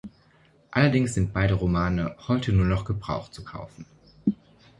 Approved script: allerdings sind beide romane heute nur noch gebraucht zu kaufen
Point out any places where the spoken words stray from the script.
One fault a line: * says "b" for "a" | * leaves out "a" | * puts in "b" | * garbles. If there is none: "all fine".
all fine